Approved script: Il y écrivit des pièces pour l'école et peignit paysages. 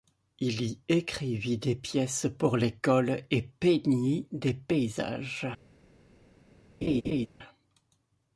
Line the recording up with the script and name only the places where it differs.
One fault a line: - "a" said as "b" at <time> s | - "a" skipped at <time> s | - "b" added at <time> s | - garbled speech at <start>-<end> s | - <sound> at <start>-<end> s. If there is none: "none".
- "des" added at 4.3 s
- laugh at 6.8-7.3 s